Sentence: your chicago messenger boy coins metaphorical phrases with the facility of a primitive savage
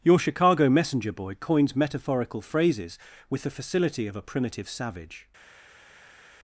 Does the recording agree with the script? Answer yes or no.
yes